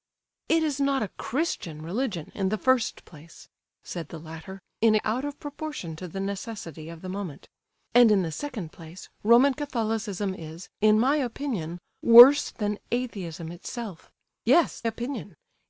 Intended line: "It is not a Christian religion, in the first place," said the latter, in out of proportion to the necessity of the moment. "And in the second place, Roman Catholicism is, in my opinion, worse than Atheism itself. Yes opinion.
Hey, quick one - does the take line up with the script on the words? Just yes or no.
yes